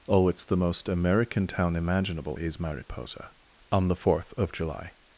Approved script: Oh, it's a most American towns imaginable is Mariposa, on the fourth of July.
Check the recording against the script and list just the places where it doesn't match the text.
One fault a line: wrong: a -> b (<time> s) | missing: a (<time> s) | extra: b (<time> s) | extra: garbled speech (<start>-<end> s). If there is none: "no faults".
wrong: a -> the (0.5 s)
wrong: towns -> town (1.4 s)